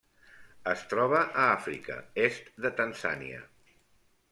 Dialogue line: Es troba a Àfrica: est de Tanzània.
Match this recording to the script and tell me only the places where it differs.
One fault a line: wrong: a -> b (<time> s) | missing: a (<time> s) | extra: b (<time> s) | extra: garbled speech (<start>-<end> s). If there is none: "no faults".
no faults